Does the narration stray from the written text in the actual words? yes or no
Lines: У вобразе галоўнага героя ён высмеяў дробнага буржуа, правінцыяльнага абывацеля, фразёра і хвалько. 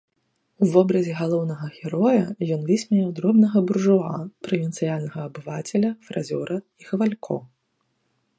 no